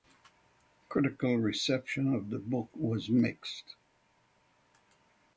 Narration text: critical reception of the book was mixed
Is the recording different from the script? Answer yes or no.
no